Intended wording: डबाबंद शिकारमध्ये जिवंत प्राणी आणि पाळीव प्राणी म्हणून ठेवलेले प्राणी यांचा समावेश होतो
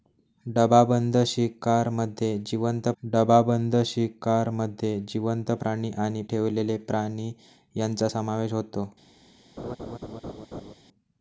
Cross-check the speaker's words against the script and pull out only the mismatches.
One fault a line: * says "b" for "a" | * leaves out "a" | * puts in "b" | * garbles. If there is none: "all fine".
* says "डबाबंद शिकारमध्ये जिवंत" for "प्राणी आणि पाळीव"
* says "आणि" for "म्हणून"